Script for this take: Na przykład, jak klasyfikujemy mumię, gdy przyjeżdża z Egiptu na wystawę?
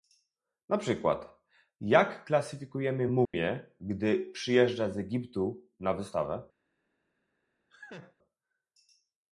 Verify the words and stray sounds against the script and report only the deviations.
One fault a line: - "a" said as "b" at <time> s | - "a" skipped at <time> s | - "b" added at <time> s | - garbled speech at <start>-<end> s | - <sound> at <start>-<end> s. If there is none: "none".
- dropout at 3.3-3.3 s
- laugh at 7.7-8.1 s